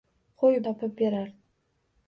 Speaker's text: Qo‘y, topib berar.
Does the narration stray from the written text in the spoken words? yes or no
no